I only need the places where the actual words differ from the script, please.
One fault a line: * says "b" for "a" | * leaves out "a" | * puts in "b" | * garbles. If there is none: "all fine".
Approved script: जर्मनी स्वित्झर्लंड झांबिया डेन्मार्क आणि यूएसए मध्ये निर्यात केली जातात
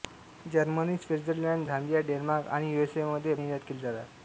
all fine